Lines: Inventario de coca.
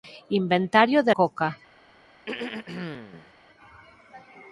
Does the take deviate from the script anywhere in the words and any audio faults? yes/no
yes